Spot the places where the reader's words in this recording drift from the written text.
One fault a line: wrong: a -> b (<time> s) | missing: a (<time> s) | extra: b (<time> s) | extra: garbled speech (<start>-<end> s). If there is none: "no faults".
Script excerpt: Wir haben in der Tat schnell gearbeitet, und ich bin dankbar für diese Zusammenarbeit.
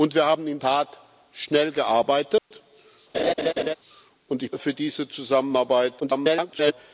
missing: der (0.6 s)
missing: bin dankbar (4.5 s)
extra: garbled speech (6.0-6.7 s)